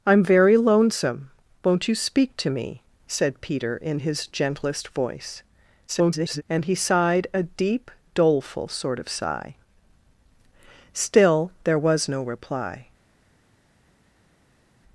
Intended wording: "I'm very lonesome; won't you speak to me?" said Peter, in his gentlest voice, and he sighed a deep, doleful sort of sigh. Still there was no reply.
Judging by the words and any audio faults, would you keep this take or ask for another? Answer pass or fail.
fail